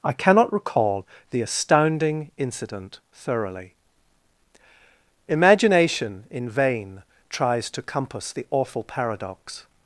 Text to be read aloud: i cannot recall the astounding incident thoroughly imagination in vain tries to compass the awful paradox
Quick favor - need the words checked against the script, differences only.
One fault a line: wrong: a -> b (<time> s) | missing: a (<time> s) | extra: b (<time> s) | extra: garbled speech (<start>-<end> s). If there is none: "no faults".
no faults